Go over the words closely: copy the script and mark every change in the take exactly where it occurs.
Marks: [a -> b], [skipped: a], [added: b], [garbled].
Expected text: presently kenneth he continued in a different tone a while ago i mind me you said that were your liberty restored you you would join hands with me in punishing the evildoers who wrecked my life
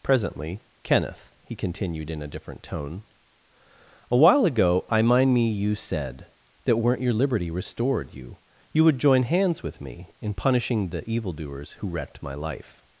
presently kenneth he continued in a different tone a while ago i mind me you said that [were -> weren't] your liberty restored you you would join hands with me in punishing the evildoers who wrecked my life